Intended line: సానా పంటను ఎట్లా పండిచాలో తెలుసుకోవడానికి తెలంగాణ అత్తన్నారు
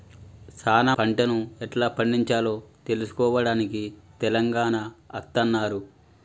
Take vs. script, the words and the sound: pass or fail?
pass